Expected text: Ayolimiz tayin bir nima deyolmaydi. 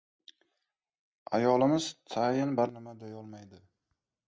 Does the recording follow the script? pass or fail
pass